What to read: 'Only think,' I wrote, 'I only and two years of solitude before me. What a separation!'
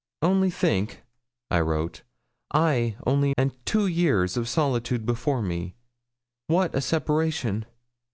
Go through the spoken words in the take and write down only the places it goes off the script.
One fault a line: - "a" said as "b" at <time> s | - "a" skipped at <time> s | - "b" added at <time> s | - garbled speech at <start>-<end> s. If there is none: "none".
none